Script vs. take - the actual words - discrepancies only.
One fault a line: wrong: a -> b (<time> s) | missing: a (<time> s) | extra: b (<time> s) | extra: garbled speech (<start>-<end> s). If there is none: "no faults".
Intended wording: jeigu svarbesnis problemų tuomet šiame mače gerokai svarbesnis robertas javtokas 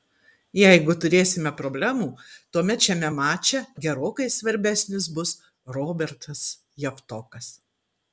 wrong: svarbesnis -> turėsime (1.0 s)
extra: bus (5.2 s)